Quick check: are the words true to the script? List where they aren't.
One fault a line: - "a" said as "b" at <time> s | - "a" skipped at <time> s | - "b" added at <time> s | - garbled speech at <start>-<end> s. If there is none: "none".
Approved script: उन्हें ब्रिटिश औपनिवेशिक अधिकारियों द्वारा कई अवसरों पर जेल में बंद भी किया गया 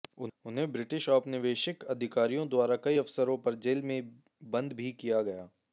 none